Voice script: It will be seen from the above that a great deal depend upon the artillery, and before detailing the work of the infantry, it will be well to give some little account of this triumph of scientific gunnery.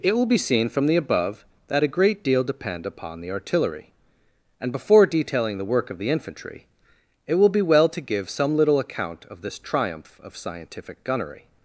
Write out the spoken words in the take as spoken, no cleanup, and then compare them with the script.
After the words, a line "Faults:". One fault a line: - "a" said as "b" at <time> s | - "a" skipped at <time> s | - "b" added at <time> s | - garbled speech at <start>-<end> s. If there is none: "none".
It will be seen from the above that a great deal depend upon the artillery, and before detailing the work of the infantry, it will be well to give some little account of this triumph of scientific gunnery.
Faults:
none